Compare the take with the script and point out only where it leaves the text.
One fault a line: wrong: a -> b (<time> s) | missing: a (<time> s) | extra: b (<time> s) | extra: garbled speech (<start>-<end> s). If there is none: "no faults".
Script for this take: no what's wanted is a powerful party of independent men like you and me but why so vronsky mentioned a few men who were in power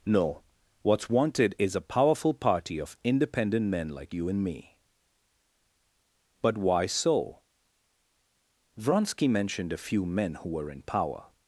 no faults